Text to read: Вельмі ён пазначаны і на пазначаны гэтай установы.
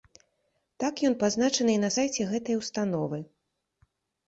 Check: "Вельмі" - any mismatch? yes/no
yes